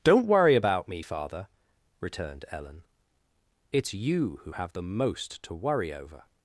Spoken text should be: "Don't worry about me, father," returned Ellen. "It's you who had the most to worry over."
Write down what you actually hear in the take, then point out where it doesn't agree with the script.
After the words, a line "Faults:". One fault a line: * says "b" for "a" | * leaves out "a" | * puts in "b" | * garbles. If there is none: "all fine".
"Don't worry about me, father," returned Ellen. "It's you who have the most to worry over."
Faults:
* says "have" for "had"